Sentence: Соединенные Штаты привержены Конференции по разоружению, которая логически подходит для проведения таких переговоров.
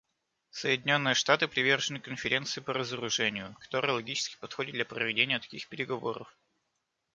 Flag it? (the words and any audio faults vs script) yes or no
no